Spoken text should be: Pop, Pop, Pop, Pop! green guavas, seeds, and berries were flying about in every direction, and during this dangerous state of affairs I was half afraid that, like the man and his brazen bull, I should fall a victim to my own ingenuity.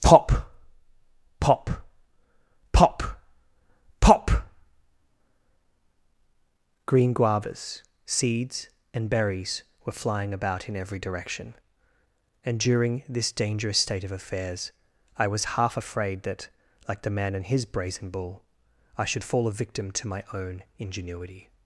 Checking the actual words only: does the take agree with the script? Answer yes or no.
yes